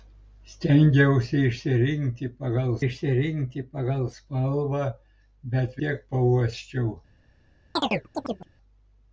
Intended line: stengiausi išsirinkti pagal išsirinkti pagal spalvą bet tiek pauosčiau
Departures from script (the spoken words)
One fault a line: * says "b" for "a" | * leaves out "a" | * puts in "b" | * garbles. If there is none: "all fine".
all fine